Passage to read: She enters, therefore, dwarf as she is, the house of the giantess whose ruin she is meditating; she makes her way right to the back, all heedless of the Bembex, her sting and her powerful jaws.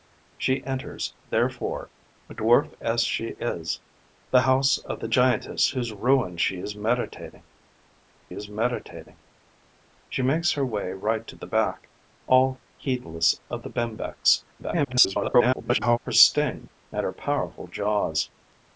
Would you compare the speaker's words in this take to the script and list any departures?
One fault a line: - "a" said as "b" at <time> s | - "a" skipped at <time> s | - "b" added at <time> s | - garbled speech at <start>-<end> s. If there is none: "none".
- "is meditating" added at 8.3 s
- garbled speech at 14.6-16.0 s